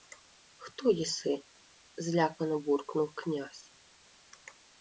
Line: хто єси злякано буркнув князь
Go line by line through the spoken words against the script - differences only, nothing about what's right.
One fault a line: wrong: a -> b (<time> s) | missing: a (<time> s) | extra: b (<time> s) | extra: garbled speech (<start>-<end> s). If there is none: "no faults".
no faults